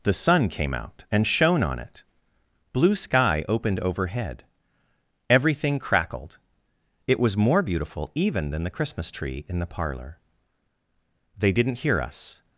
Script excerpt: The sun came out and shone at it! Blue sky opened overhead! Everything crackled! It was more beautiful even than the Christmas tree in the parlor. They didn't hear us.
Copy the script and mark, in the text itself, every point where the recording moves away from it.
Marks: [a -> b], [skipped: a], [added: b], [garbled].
The sun came out and shone [at -> on] it! Blue sky opened overhead! Everything crackled! It was more beautiful even than the Christmas tree in the parlor. They didn't hear us.